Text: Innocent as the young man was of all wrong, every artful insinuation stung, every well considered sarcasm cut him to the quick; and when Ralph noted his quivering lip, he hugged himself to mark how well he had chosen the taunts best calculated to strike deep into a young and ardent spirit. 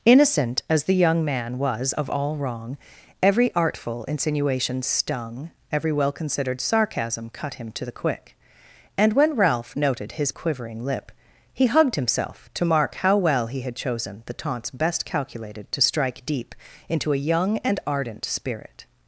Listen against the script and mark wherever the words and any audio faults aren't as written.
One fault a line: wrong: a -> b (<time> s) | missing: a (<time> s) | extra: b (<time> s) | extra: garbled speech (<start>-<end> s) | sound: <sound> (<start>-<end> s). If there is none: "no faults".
no faults